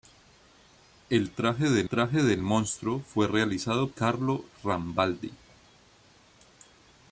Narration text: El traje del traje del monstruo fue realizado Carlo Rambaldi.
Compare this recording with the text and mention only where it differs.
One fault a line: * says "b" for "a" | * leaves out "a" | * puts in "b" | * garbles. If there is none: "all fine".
all fine